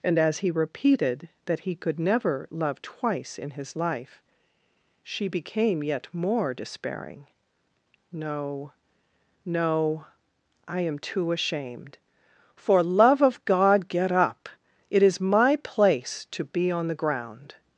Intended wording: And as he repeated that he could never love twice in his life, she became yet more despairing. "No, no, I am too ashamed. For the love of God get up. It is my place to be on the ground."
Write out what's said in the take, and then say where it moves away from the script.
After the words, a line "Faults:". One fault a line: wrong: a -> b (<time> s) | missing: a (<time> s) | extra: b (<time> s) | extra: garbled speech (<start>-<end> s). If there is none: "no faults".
And as he repeated that he could never love twice in his life, she became yet more despairing. "No, no, I am too ashamed. For love of God get up. It is my place to be on the ground."
Faults:
missing: the (12.8 s)